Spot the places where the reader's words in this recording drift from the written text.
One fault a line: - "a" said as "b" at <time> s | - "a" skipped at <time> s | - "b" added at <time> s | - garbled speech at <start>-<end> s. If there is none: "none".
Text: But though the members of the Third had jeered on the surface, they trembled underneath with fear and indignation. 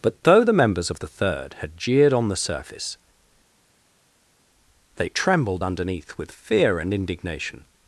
none